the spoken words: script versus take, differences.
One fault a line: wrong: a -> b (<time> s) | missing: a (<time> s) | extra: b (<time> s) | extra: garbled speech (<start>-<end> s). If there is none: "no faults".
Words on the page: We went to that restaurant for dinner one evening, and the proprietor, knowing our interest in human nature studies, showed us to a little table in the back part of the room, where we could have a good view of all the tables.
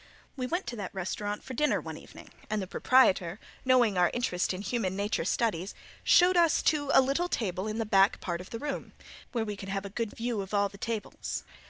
no faults